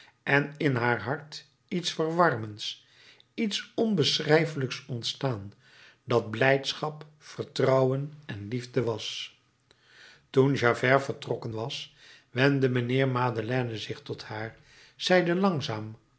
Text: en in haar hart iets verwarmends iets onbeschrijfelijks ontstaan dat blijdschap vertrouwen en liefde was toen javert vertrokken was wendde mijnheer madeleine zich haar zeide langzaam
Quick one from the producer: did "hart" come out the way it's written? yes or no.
yes